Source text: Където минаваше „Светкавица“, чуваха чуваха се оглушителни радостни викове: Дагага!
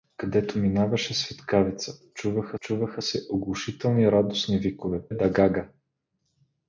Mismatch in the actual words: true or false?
false